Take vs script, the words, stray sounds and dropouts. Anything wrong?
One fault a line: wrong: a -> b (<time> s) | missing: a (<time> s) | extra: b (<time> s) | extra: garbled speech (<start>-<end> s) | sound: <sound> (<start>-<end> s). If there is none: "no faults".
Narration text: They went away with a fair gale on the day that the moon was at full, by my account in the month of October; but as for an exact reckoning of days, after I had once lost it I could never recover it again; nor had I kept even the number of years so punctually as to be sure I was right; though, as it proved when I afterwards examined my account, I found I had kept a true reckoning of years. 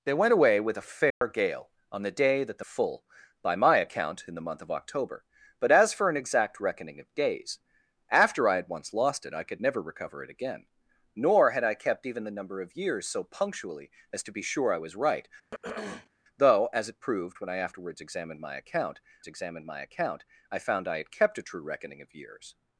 sound: dropout (1.1-1.2 s)
missing: moon was at (2.6 s)
sound: throat clearing (15.5-16.1 s)
extra: examined my account (19.3 s)